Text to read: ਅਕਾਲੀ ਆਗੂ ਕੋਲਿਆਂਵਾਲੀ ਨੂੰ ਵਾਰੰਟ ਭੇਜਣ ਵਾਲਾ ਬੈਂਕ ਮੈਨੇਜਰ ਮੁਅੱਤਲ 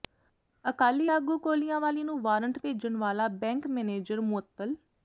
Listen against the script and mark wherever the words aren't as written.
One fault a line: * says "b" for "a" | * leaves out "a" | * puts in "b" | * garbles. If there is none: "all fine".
all fine